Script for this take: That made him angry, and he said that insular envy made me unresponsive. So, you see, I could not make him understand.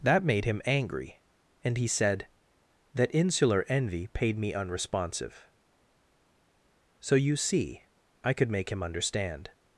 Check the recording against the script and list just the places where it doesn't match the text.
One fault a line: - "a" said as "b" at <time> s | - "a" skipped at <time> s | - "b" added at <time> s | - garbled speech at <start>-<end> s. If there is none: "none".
- "made" said as "paid" at 4.1 s
- "not" skipped at 8.5 s